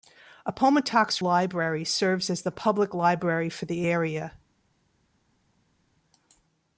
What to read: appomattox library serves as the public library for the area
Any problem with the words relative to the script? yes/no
no